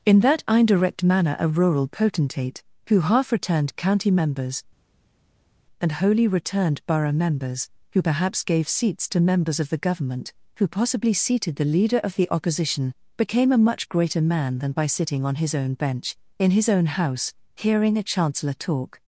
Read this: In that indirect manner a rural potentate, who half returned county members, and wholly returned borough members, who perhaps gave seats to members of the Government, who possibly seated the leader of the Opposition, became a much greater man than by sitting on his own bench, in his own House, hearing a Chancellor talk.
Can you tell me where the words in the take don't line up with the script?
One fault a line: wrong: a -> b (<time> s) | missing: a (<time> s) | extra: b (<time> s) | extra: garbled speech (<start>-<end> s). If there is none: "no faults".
no faults